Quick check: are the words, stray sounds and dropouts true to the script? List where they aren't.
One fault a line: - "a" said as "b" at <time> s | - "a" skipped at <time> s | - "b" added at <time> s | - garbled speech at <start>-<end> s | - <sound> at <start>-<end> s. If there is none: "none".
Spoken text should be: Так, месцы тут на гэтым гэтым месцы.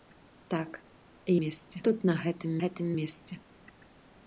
none